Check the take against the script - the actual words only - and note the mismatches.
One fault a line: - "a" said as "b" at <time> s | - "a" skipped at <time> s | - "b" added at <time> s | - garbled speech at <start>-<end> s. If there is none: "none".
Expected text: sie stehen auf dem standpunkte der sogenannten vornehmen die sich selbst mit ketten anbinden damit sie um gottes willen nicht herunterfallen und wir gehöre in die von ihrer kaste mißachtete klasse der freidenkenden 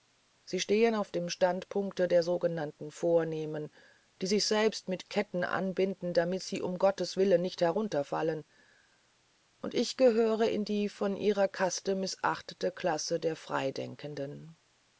- "wir" said as "ich" at 9.7 s